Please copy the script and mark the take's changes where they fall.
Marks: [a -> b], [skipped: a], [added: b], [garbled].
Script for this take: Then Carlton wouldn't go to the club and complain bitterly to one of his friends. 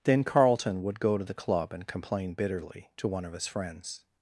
Then Carlton [wouldn't -> would] go to the club and complain bitterly to one of his friends.